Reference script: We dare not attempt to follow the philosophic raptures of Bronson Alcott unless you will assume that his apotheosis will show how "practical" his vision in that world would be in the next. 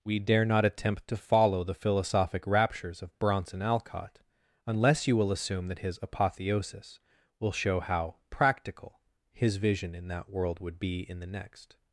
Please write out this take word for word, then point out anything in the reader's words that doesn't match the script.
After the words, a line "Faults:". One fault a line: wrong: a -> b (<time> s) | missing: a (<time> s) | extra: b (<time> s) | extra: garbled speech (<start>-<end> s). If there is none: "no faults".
We dare not attempt to follow the philosophic raptures of Bronson Alcott unless you will assume that his apotheosis will show how "practical" his vision in that world would be in the next.
Faults:
no faults